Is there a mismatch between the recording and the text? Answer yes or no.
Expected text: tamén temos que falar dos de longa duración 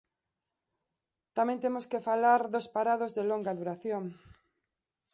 yes